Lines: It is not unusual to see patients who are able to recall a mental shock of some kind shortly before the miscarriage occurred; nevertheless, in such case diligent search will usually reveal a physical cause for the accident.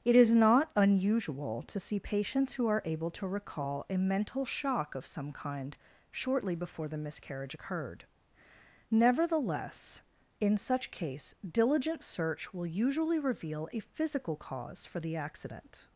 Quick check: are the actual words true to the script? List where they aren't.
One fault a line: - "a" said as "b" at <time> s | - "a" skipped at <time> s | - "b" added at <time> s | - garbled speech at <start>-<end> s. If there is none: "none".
none